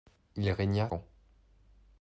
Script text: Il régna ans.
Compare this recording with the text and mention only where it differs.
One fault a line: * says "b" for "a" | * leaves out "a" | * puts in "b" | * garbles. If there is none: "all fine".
all fine